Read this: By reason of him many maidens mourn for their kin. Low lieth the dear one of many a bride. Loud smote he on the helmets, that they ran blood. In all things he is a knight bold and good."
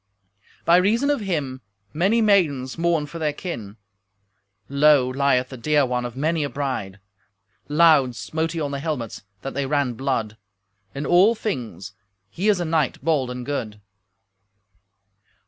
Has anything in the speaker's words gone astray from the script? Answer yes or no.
no